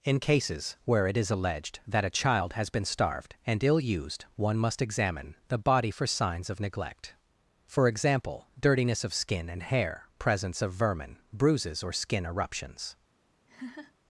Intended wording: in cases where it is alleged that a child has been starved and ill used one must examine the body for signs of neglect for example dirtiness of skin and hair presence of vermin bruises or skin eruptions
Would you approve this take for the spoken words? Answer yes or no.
yes